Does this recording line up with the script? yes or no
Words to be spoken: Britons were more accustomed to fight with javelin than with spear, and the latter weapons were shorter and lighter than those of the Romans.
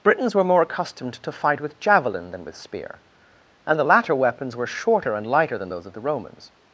yes